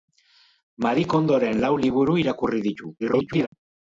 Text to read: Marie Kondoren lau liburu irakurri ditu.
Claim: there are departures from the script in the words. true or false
true